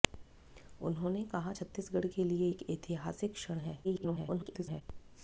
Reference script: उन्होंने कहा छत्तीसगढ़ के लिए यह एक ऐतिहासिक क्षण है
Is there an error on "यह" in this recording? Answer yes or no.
yes